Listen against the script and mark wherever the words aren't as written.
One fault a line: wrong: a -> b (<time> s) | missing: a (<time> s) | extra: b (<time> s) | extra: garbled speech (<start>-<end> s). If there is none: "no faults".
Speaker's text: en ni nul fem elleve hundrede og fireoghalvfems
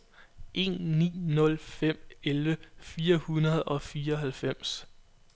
extra: fire (2.8 s)